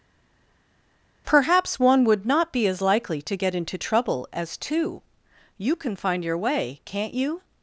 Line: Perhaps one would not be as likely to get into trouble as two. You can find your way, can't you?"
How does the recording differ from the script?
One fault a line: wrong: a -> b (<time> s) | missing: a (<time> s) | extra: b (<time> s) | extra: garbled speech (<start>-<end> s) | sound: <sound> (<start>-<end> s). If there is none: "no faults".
no faults